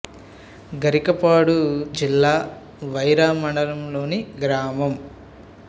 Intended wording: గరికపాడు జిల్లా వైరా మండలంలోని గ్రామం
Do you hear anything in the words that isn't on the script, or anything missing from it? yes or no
no